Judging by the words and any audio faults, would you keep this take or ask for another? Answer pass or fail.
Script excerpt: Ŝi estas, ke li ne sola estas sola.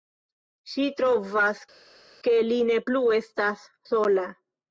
fail